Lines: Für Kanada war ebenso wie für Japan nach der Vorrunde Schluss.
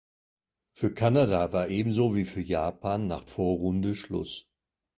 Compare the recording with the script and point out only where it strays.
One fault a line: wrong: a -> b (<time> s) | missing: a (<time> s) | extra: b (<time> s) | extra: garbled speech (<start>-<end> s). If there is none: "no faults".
missing: der (3.2 s)